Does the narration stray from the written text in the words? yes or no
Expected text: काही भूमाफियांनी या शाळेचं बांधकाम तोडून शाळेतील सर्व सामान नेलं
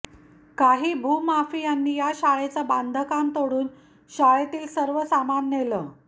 no